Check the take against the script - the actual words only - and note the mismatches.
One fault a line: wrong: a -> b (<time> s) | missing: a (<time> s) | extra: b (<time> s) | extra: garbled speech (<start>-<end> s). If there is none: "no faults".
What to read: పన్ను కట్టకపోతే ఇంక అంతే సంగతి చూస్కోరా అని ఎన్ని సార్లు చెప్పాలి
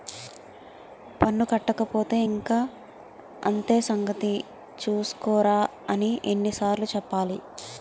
no faults